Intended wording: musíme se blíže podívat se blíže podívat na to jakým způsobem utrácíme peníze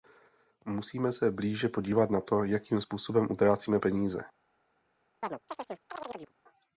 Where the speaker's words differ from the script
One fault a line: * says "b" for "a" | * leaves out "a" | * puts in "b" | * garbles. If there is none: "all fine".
* leaves out "se blíže podívat"